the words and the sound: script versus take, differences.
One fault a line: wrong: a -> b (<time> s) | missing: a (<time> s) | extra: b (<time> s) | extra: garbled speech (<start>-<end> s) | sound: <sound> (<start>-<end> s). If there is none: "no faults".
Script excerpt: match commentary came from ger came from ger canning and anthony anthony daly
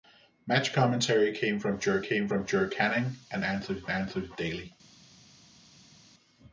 no faults